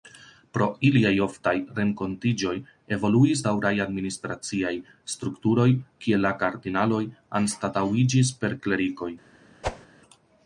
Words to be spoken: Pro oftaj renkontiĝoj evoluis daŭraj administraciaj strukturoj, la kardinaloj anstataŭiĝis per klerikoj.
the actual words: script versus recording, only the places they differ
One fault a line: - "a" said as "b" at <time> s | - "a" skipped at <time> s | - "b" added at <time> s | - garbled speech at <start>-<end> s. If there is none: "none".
- "iliaj" added at 0.9 s
- "kie" added at 6.0 s